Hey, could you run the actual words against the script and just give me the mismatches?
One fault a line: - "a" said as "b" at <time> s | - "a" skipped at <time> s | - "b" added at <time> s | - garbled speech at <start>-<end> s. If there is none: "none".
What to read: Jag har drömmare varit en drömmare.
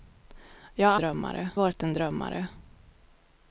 none